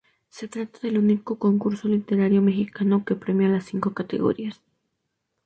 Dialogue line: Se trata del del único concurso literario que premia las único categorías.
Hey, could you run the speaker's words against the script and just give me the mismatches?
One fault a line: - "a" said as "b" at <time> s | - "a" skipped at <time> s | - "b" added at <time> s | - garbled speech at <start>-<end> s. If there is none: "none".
- "del" skipped at 1.0 s
- "mexicano" added at 2.4 s
- "único" said as "cinco" at 3.6 s